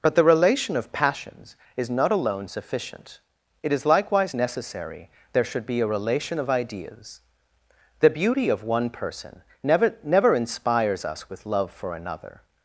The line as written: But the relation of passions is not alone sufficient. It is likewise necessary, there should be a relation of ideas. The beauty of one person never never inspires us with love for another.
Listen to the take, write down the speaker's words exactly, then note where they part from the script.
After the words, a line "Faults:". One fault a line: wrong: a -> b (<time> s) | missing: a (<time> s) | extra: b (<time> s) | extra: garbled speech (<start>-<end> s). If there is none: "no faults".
But the relation of passions is not alone sufficient. It is likewise necessary, there should be a relation of ideas. The beauty of one person never never inspires us with love for another.
Faults:
no faults